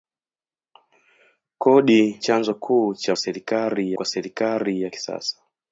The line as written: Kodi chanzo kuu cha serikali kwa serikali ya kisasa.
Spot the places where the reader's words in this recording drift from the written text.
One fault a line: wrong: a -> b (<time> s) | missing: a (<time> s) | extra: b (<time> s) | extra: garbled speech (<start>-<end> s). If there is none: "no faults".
no faults